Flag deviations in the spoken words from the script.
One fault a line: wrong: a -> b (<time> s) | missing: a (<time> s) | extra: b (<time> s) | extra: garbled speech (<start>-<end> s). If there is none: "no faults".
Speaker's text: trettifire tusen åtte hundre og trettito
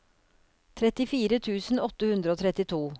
no faults